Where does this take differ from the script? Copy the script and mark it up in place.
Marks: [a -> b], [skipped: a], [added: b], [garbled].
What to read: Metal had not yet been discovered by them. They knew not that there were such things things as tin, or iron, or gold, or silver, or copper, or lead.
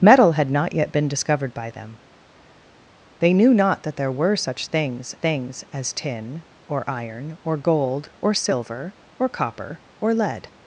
Metal had not yet been discovered by them. They knew not that there were such things things as tin, or iron, or gold, or silver, or copper, or lead.